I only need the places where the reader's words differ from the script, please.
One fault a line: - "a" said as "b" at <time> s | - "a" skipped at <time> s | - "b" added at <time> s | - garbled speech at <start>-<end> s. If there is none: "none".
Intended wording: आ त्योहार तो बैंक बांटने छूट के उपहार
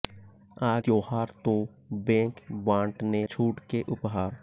none